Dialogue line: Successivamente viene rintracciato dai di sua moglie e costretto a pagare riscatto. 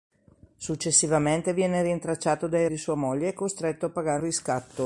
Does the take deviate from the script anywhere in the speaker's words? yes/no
no